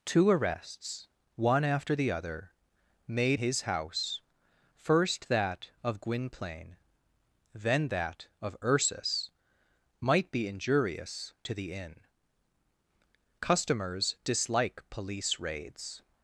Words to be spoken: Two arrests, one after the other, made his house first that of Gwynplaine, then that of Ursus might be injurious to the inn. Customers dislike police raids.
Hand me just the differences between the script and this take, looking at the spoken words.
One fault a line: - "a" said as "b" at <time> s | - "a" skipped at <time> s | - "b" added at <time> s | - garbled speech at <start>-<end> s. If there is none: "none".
none